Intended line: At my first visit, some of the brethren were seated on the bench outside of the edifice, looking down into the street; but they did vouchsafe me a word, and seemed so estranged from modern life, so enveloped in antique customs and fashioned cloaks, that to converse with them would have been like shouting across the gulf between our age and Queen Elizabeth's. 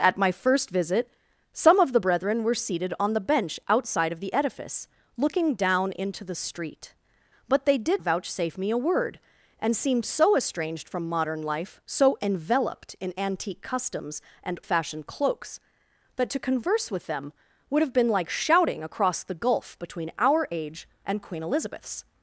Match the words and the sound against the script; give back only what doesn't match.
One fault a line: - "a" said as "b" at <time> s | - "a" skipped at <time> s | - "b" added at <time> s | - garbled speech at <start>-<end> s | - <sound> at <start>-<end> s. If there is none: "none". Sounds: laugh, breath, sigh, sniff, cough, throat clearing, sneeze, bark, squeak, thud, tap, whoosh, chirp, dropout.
none